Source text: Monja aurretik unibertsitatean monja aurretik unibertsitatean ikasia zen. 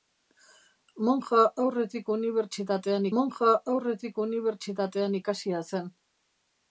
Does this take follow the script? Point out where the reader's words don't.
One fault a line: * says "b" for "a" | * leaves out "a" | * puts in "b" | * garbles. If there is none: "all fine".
all fine